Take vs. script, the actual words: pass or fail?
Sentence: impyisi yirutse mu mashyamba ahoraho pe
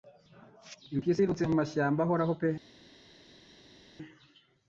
pass